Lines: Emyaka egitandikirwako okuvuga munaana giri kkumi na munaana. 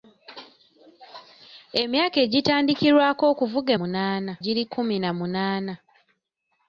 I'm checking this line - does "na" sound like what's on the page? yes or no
yes